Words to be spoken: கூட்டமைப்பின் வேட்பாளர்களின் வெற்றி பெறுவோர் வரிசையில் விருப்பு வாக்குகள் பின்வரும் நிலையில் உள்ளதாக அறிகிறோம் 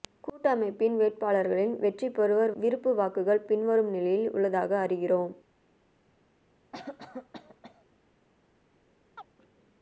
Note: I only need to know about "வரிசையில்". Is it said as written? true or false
false